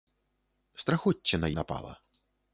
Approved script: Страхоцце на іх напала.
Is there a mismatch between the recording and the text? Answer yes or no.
yes